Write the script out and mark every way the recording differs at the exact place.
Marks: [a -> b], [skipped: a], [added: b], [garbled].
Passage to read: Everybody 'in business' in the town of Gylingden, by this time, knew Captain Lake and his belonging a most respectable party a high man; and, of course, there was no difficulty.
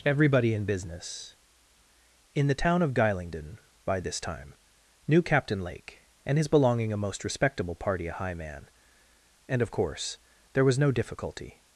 Everybody 'in business' in the town of Gylingden, by this time, knew Captain Lake and his belonging a most respectable party a high man; and, of course, there was no difficulty.